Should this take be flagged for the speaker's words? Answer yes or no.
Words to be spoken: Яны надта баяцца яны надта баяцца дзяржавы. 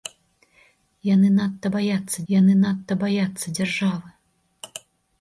no